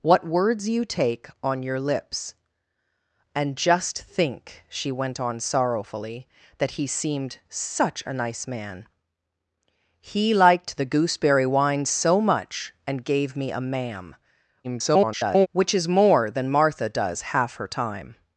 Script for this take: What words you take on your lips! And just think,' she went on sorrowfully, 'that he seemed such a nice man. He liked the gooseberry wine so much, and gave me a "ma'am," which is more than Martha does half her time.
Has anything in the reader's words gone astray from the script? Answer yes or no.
yes